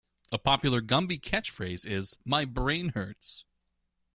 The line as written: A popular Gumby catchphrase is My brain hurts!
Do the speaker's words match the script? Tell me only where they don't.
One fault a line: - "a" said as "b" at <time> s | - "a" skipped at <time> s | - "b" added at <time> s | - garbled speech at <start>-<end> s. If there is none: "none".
none